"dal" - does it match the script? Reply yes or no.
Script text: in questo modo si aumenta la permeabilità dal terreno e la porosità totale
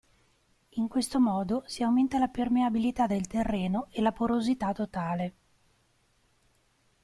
no